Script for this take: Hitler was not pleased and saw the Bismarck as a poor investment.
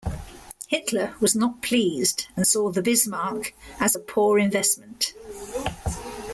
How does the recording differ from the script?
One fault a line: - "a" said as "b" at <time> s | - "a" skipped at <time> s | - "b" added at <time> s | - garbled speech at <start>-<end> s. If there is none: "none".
none